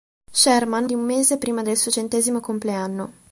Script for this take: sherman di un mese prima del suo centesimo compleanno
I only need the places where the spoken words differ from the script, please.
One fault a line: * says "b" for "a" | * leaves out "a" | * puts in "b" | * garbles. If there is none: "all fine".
all fine